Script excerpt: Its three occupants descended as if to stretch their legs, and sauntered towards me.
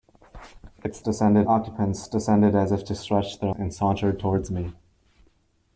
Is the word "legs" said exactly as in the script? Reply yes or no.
no